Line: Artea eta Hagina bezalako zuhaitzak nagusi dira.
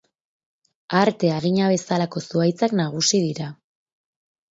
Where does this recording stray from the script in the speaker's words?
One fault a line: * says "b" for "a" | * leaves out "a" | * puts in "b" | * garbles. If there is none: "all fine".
* leaves out "eta"